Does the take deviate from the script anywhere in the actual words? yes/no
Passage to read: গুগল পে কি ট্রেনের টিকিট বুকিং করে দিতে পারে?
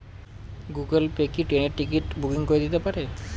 no